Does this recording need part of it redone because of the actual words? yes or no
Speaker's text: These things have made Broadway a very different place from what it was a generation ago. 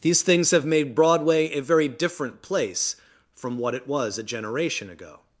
no